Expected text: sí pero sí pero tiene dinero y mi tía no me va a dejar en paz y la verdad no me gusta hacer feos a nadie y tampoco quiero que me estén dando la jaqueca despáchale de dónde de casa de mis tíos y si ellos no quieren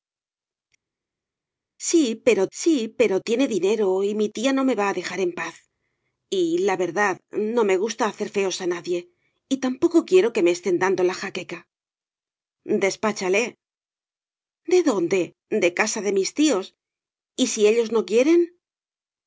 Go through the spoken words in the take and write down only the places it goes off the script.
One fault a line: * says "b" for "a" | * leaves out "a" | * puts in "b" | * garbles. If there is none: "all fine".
all fine